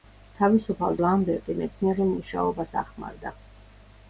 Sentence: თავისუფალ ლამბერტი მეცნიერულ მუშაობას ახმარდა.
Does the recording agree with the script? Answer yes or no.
yes